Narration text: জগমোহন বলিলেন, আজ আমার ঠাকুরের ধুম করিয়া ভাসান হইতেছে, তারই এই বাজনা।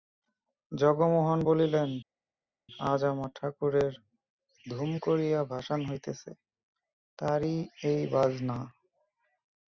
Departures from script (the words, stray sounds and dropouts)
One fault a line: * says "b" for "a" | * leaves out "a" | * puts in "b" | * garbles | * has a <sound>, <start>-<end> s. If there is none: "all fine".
all fine